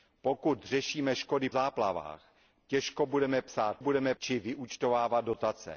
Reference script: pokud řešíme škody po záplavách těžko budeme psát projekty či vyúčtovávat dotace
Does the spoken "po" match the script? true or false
false